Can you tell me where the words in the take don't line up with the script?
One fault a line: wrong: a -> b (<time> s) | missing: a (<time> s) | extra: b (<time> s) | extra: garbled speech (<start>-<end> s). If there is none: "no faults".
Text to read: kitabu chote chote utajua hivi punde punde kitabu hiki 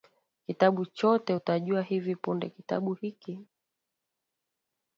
missing: chote (1.4 s)
missing: punde (2.5 s)